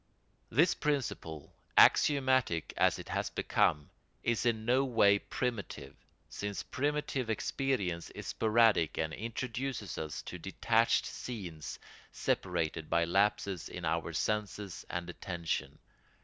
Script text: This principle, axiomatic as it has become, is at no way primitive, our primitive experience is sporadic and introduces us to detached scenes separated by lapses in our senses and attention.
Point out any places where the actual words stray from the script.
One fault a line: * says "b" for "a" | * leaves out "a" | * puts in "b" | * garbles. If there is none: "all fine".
* says "in" for "at"
* says "since" for "our"